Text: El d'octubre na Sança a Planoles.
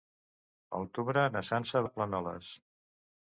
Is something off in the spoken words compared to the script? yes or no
no